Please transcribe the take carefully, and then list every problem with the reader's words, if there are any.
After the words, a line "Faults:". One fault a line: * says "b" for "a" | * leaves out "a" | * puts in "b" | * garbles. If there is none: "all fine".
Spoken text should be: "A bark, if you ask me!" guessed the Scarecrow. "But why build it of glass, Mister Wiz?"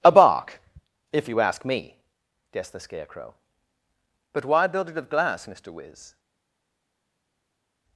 "A bark, if you ask me!" guessed the Scarecrow. "But why build it of glass, Mister Wiz?"
Faults:
all fine